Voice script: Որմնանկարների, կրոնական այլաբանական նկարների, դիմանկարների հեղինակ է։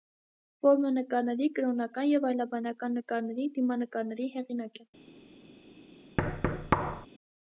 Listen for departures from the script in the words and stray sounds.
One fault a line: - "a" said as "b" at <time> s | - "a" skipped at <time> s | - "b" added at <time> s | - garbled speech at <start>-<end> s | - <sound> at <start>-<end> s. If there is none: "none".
- "և" added at 2.1 s
- thud at 6.2-7.1 s